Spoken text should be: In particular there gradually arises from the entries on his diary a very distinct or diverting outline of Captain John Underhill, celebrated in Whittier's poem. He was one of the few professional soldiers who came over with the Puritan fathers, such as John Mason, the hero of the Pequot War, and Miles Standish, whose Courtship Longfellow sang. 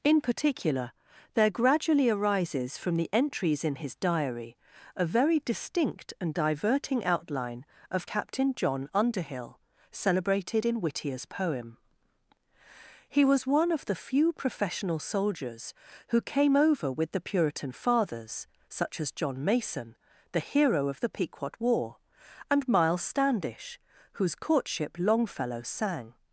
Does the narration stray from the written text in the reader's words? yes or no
yes